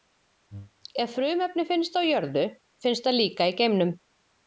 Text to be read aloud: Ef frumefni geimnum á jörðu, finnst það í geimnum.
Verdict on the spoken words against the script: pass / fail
fail